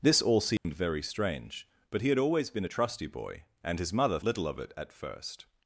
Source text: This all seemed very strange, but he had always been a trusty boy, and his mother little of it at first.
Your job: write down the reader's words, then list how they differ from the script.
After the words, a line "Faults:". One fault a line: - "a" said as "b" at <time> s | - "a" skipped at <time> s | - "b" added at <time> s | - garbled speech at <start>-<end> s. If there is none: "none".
This all seemed very strange, but he had always been a trusty boy, and his mother little of it at first.
Faults:
none